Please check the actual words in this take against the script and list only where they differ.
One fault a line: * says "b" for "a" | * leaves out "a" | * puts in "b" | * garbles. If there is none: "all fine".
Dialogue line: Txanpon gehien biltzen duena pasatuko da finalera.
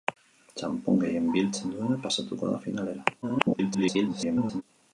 * garbles